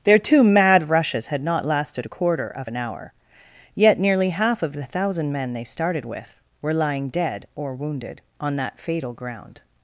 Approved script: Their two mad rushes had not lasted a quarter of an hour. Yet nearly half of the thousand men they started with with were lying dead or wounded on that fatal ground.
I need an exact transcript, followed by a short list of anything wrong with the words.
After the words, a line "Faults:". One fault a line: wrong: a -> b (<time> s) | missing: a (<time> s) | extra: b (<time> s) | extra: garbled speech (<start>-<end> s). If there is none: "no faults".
Their two mad rushes had not lasted a quarter of an hour. Yet nearly half of the thousand men they started with were lying dead or wounded on that fatal ground.
Faults:
missing: with (6.4 s)